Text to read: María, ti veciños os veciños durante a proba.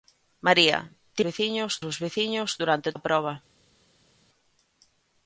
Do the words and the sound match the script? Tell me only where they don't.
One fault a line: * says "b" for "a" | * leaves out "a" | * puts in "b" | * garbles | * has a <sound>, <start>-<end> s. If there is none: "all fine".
all fine